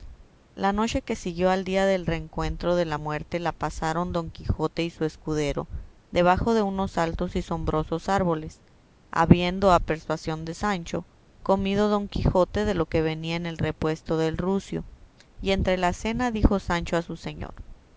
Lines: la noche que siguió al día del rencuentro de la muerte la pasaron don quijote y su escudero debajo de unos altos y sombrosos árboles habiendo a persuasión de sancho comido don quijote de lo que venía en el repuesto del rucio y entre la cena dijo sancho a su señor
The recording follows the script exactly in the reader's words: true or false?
true